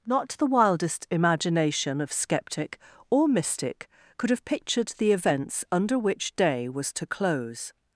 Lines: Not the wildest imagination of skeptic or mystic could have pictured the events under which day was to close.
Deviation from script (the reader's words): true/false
false